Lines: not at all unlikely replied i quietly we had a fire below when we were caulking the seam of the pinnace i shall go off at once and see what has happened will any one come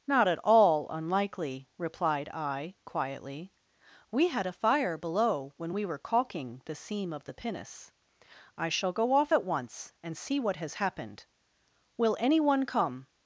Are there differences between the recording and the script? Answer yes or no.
no